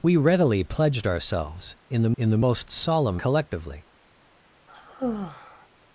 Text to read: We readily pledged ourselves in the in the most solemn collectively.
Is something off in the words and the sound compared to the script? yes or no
yes